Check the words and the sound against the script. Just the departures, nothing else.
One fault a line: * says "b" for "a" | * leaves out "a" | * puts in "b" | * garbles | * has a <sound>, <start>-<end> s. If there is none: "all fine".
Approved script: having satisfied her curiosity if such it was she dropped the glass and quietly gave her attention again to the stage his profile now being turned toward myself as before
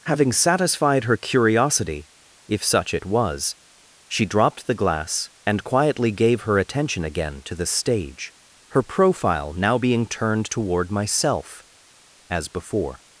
* says "her" for "his"